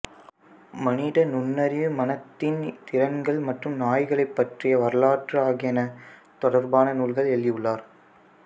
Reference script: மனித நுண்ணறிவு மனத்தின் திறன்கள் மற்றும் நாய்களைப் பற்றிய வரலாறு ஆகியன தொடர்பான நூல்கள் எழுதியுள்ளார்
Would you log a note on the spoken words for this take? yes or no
no